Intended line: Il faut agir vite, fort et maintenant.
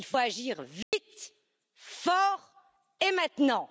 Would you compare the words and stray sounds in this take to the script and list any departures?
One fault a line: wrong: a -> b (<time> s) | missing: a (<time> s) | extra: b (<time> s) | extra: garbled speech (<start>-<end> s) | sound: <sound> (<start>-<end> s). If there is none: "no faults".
sound: dropout (0.8-0.9 s)